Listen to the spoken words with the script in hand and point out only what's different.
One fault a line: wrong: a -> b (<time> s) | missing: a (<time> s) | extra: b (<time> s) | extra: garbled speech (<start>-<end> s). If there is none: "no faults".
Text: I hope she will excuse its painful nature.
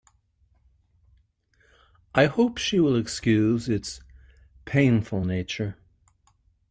no faults